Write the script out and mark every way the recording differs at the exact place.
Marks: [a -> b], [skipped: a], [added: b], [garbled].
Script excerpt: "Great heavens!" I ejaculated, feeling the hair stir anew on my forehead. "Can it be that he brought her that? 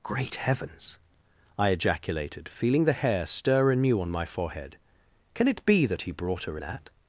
"Great heavens!" I ejaculated, feeling the hair stir anew on my forehead. "Can it be that he brought her that?